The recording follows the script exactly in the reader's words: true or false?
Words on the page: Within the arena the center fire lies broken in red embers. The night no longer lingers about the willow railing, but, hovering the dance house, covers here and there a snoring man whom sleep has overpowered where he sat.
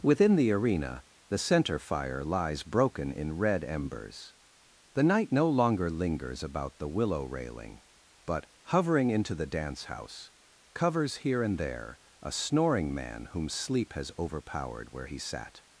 false